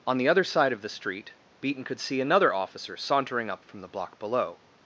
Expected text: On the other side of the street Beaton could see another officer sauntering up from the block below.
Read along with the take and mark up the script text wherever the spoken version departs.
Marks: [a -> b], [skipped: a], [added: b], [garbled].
On the other side of the street Beaton could see another officer sauntering up from the block below.